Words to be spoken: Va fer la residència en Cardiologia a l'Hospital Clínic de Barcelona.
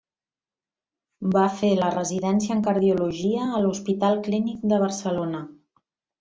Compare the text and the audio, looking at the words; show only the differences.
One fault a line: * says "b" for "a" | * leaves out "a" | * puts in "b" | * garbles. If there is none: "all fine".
all fine